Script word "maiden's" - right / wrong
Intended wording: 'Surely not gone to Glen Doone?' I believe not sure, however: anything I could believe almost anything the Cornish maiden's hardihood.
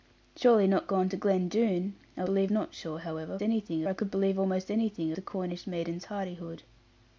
right